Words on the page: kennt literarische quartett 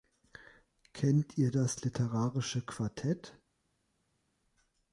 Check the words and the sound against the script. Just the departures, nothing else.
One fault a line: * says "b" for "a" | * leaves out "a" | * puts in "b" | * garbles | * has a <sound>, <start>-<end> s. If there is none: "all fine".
* puts in "ihr das"